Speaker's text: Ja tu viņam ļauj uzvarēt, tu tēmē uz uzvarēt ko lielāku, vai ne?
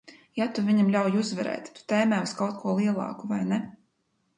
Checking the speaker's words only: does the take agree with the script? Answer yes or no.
no